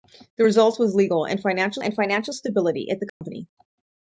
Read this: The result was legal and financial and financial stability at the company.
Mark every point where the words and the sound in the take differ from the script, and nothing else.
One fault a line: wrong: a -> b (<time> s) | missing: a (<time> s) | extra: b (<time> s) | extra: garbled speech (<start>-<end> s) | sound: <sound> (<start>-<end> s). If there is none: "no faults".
sound: dropout (3.1-3.2 s)